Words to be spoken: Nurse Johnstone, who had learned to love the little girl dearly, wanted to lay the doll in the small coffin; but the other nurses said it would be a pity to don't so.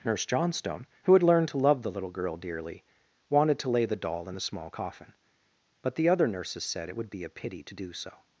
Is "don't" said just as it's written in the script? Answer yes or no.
no